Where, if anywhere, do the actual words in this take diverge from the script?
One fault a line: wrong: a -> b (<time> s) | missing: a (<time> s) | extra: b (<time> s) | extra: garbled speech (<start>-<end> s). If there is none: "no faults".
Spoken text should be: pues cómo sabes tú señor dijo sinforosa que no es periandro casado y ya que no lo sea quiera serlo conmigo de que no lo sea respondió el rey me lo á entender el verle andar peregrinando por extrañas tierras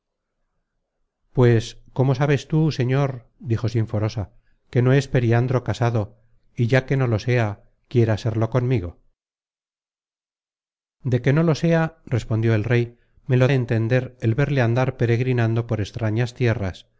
no faults